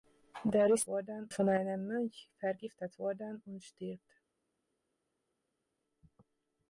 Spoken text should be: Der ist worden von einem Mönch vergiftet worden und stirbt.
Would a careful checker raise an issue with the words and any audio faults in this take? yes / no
no